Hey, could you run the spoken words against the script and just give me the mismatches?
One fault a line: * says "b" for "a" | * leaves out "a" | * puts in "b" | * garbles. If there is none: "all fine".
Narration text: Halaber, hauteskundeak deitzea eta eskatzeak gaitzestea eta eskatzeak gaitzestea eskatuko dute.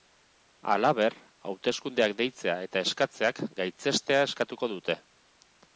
* leaves out "eta eskatzeak gaitzestea"